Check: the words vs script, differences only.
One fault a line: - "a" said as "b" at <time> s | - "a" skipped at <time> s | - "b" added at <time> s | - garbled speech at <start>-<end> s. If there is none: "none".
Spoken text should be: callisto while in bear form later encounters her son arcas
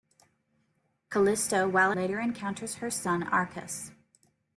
- "in bear form" skipped at 1.9 s